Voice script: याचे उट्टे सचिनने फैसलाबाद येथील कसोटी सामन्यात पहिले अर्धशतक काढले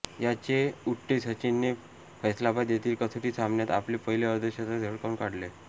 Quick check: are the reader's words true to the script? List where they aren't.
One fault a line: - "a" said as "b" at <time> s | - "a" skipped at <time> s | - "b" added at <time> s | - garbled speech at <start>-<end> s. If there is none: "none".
- "आपले" added at 3.7 s
- "झळकावून" added at 4.8 s